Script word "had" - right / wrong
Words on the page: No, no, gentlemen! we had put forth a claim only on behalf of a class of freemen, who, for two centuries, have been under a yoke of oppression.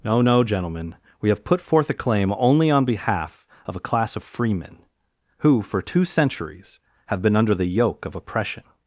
wrong